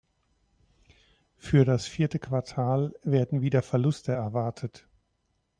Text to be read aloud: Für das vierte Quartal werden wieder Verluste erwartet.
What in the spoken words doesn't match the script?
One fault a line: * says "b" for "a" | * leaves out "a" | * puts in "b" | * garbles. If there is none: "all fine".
all fine